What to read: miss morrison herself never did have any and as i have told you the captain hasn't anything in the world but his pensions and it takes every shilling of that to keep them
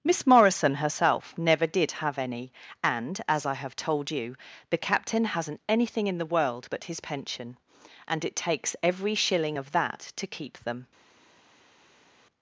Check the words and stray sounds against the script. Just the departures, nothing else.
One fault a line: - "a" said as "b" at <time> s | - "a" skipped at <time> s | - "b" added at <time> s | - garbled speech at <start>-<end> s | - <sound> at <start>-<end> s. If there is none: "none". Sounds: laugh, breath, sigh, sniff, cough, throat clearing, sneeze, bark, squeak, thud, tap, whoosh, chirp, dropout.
- "pensions" said as "pension" at 7.0 s